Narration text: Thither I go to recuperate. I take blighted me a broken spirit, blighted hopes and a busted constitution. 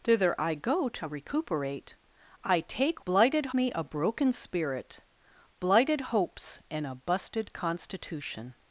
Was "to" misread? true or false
false